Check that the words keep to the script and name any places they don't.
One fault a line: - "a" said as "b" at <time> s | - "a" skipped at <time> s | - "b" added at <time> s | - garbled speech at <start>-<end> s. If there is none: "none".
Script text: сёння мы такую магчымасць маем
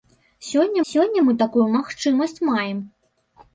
- "сёння" added at 0.9 s